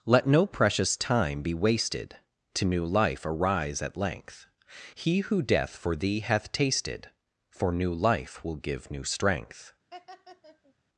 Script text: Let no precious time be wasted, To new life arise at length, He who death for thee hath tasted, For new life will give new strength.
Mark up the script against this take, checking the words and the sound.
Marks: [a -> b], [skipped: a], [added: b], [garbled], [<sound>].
Let no precious time be wasted, To new life arise at length, He who death for thee hath tasted, For new life will give new strength. [laugh]